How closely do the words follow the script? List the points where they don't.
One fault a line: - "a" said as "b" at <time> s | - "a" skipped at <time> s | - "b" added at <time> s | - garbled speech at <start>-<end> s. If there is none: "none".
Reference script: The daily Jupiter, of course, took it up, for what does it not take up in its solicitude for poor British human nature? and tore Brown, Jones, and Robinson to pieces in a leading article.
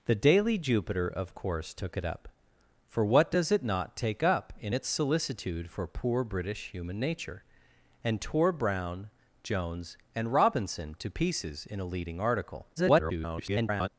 - garbled speech at 12.8-13.9 s